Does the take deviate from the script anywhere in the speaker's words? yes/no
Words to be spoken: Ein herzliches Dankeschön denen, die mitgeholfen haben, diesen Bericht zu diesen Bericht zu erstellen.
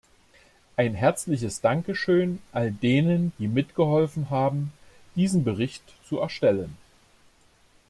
yes